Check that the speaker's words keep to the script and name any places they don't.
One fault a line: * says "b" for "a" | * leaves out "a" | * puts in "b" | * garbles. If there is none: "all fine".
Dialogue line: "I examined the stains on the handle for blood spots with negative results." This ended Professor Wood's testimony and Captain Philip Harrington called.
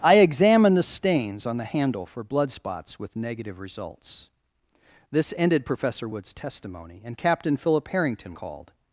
all fine